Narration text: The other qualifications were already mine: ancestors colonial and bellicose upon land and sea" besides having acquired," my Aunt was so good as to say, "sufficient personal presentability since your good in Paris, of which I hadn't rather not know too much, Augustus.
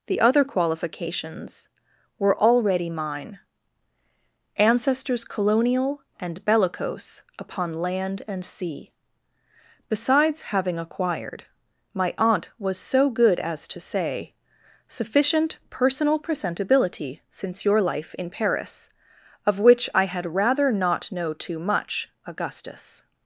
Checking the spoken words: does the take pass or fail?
fail